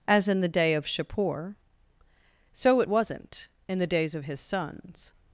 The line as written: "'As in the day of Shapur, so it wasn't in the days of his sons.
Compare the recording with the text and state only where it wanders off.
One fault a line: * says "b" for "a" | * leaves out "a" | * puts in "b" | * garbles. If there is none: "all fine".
all fine